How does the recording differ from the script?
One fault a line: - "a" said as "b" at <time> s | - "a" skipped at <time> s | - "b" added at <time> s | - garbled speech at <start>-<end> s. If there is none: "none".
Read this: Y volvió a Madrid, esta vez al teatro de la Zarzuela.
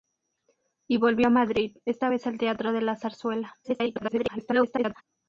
- garbled speech at 3.6-5.0 s